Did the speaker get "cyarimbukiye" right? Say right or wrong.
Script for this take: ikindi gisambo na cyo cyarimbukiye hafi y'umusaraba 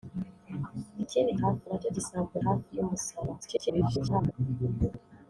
wrong